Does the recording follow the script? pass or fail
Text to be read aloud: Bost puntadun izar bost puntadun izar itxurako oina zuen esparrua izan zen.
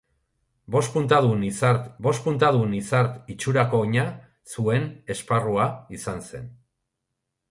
pass